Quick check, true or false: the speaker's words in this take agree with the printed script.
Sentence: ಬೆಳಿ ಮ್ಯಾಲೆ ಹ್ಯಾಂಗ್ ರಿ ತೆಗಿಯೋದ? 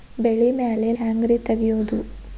true